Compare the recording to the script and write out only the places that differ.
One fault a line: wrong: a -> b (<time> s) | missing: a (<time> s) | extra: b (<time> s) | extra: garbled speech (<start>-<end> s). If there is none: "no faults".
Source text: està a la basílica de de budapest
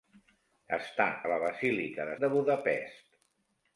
no faults